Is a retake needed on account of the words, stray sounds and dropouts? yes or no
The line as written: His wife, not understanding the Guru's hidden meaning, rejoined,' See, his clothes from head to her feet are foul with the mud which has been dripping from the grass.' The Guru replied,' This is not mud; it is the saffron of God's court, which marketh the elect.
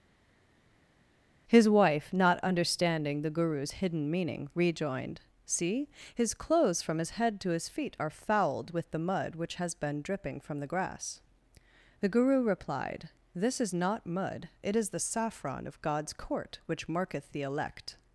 yes